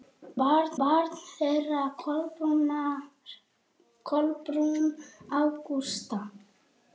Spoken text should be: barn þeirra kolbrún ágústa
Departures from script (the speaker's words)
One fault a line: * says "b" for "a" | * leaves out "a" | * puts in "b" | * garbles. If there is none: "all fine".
* puts in "barn"